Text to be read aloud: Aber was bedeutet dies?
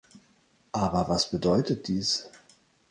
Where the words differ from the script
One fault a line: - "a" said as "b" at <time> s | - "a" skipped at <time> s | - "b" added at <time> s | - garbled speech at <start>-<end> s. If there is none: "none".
none